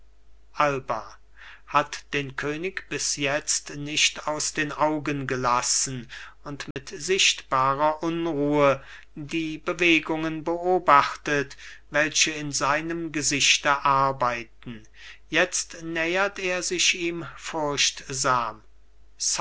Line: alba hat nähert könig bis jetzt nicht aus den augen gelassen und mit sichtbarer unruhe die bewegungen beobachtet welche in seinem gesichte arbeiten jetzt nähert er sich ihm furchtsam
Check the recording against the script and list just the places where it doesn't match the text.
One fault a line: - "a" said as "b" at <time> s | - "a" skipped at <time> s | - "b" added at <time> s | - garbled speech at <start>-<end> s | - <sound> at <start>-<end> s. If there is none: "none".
- "nähert" said as "den" at 2.1 s
- dropout at 6.7-6.8 s